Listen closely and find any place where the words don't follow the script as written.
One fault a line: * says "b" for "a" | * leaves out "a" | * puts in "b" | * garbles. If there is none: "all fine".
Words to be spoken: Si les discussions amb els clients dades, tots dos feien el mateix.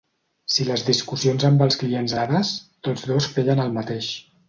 all fine